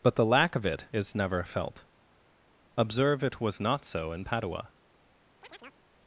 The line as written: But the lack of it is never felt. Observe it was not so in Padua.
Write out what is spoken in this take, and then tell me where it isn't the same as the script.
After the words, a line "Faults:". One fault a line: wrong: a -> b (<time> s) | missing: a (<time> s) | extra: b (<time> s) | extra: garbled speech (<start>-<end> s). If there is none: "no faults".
But the lack of it is never felt. Observe it was not so in Padua.
Faults:
no faults